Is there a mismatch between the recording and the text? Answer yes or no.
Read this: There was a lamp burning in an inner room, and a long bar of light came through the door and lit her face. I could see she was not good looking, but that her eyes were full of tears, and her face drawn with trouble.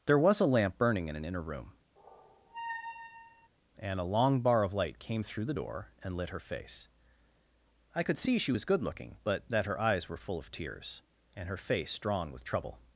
yes